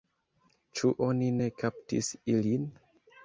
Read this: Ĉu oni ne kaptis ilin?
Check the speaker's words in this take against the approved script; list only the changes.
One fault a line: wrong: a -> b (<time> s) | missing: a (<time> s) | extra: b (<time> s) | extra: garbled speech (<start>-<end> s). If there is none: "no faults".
no faults